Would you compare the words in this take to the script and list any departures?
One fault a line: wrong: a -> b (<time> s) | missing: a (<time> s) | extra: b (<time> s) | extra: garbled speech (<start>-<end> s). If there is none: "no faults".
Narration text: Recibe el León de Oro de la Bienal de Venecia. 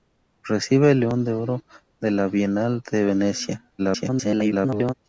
extra: garbled speech (3.8-4.9 s)